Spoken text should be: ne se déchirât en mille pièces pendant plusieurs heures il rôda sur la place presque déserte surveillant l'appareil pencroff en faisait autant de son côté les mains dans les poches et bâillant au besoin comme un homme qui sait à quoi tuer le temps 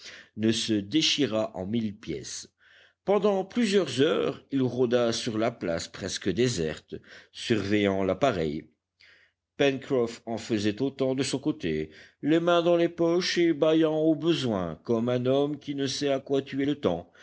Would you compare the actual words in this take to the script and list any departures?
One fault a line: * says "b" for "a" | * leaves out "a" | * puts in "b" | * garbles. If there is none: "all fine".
* puts in "ne"